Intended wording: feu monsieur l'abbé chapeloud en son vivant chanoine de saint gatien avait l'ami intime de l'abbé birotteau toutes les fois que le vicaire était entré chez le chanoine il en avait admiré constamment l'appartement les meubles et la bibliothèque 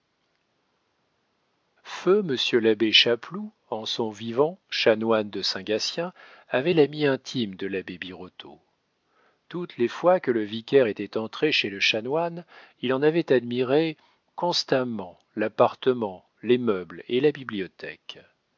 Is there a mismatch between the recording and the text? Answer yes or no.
no